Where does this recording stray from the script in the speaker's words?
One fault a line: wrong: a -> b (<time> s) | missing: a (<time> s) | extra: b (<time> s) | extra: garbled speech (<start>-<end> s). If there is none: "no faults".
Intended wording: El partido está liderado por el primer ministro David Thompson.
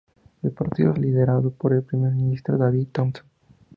missing: está (0.9 s)